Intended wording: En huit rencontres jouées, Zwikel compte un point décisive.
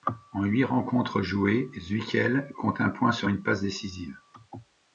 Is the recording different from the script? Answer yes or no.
yes